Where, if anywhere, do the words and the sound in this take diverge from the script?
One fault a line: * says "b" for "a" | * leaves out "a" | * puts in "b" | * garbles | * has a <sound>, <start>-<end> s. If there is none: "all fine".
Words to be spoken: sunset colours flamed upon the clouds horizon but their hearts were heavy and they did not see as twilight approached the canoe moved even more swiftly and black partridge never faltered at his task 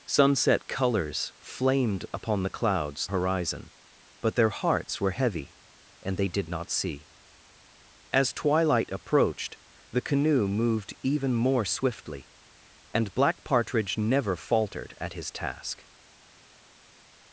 all fine